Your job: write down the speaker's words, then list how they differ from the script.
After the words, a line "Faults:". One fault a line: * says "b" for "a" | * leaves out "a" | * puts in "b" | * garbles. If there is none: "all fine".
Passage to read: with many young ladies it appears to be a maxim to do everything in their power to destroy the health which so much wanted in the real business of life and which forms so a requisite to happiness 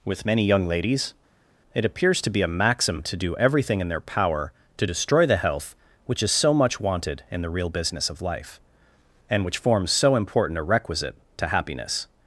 with many young ladies it appears to be a maxim to do everything in their power to destroy the health which is so much wanted in the real business of life and which forms so important a requisite to happiness
Faults:
* puts in "is"
* puts in "important"